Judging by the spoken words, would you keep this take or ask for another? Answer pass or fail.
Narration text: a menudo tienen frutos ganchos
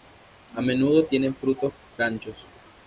pass